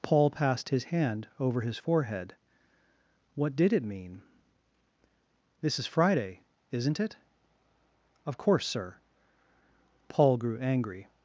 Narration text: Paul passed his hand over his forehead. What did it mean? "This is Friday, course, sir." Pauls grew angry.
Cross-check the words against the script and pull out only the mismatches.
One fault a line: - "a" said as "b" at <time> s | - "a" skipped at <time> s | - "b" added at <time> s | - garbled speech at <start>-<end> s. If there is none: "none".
- "isn't it Of" added at 6.7 s
- "Pauls" said as "Paul" at 10.1 s